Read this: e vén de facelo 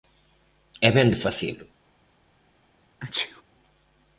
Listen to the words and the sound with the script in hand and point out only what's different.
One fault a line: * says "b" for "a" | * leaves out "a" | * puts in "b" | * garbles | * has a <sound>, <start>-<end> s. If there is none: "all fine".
* has a sneeze, 3.0-3.4 s